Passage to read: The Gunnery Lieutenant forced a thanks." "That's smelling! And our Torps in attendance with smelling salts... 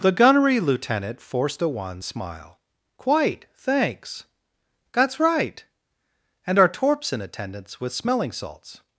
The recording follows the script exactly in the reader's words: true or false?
false